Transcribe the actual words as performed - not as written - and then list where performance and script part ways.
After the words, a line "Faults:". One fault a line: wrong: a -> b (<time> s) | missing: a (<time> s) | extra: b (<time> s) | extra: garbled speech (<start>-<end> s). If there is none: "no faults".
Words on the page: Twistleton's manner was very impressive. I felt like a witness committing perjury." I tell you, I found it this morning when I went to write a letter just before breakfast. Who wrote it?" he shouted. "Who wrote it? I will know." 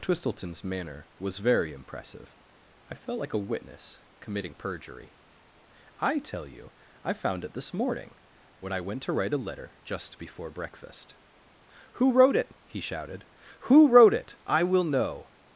Twistleton's manner was very impressive. I felt like a witness committing perjury." I tell you, I found it this morning when I went to write a letter just before breakfast. Who wrote it?" he shouted. "Who wrote it? I will know."
Faults:
no faults